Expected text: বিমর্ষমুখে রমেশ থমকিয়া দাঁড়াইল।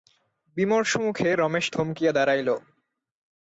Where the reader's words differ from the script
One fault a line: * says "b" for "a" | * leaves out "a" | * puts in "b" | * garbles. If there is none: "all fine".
all fine